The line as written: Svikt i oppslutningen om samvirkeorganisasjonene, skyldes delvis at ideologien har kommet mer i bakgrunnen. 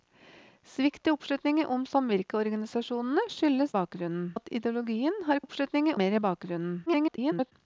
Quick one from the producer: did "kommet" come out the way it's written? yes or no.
no